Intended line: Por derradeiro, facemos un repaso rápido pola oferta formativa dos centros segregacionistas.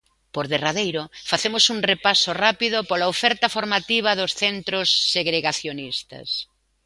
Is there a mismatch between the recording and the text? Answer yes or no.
no